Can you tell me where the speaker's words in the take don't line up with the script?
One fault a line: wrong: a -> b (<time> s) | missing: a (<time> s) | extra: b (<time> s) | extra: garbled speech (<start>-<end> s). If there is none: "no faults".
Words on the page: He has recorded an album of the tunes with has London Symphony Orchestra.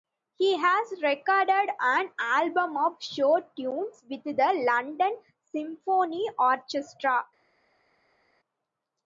wrong: the -> show (3.0 s)
wrong: has -> the (4.2 s)